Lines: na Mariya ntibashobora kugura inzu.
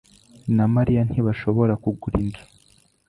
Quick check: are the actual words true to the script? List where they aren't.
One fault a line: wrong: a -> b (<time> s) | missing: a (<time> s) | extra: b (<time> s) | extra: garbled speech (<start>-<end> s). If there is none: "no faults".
no faults